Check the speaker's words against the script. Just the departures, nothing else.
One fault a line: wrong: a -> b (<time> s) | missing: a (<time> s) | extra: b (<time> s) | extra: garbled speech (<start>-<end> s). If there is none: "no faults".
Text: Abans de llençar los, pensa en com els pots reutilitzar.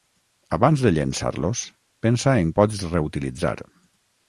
missing: com els (2.5 s)